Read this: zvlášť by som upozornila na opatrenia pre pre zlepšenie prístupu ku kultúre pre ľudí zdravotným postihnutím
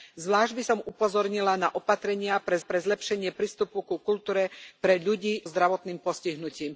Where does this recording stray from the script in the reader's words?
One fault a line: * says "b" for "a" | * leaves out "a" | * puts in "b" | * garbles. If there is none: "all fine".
all fine